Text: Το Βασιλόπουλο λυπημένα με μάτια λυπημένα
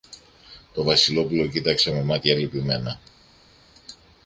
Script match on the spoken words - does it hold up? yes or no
no